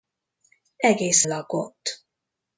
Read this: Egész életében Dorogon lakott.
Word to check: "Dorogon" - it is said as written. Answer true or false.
false